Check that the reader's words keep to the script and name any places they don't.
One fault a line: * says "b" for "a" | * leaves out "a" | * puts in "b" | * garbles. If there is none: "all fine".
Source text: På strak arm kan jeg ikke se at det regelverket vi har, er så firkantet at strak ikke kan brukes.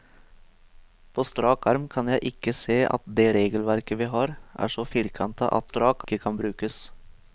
all fine